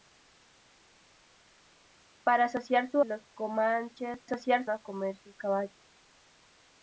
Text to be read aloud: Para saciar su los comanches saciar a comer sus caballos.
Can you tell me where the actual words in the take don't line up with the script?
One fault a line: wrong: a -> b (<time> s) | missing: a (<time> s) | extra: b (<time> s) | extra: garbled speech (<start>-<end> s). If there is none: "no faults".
no faults